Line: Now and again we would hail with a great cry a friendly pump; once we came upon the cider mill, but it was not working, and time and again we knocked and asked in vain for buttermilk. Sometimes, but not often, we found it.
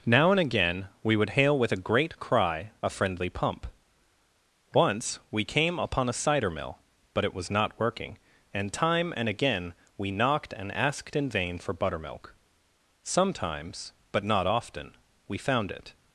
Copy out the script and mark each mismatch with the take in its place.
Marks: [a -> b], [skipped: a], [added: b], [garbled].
Now and again we would hail with a great cry a friendly pump; once we came upon [the -> a] cider mill, but it was not working, and time and again we knocked and asked in vain for buttermilk. Sometimes, but not often, we found it.